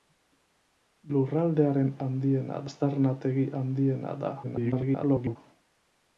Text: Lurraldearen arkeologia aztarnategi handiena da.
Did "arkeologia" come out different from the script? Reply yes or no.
yes